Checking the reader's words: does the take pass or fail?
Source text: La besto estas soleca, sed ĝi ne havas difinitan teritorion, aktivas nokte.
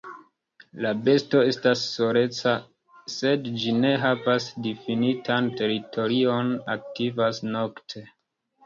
pass